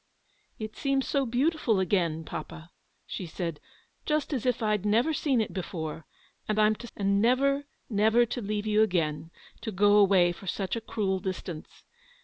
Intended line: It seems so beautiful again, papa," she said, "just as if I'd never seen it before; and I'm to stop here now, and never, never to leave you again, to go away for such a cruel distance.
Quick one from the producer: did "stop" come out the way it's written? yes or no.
no